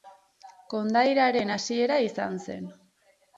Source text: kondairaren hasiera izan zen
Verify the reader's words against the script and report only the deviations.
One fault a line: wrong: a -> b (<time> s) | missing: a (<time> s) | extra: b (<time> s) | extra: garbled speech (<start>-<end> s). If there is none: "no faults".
no faults